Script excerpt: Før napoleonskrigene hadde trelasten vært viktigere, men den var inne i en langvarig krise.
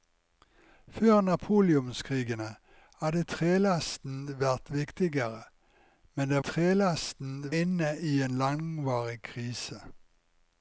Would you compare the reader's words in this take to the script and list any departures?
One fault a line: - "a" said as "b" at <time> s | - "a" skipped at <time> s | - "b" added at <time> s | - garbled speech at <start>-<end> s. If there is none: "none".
- "var" said as "trelasten" at 6.4 s